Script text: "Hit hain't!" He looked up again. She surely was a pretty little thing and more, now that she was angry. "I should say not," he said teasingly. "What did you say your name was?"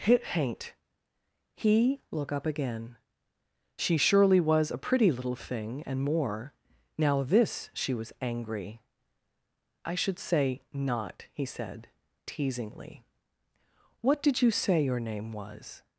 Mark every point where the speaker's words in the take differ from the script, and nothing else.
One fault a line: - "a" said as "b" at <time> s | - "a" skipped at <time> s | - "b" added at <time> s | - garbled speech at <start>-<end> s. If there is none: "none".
- "looked" said as "look" at 2.1 s
- "that" said as "this" at 7.2 s